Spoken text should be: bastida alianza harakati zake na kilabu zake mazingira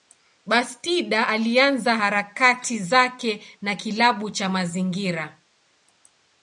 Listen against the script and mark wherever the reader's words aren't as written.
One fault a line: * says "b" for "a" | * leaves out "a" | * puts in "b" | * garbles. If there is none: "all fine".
* says "cha" for "zake"